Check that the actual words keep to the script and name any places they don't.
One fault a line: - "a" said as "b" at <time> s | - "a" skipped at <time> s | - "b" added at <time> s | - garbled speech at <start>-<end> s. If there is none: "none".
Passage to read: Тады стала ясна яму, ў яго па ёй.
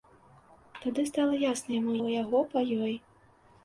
none